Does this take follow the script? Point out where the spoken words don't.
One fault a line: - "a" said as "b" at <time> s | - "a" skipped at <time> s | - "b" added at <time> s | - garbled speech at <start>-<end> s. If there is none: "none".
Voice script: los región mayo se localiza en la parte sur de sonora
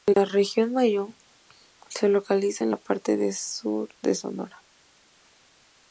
- "los" said as "la" at 0.1 s